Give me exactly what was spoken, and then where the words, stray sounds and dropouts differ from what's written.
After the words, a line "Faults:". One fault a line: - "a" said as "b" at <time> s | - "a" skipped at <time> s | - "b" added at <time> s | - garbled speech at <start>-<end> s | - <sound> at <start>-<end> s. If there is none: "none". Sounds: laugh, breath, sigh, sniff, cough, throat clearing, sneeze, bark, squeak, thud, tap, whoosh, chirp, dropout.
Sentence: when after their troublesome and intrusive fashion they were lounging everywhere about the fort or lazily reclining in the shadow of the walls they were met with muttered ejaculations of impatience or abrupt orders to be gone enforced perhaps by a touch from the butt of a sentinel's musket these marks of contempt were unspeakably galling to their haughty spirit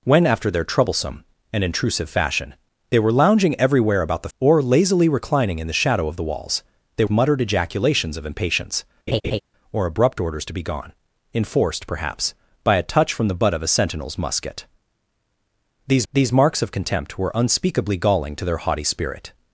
when after their troublesome and intrusive fashion they were lounging everywhere about the or lazily reclining in the shadow of the walls they muttered ejaculations of impatience or abrupt orders to be gone enforced perhaps by a touch from the butt of a sentinel's musket these these marks of contempt were unspeakably galling to their haughty spirit
Faults:
- "fort" skipped at 4.3 s
- "were met with" skipped at 7.0 s
- laugh at 9.1-9.4 s
- "these" added at 16.1 s